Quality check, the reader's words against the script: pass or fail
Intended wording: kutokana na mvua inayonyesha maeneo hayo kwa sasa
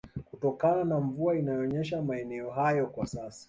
pass